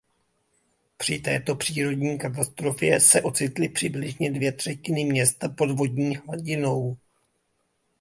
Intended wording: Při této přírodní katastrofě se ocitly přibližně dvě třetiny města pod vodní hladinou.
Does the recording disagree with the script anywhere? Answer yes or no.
no